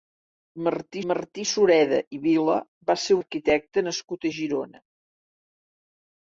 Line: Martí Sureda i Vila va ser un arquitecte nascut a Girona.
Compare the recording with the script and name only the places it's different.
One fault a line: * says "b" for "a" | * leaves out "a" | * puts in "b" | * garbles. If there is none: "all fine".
* puts in "martí"
* leaves out "un"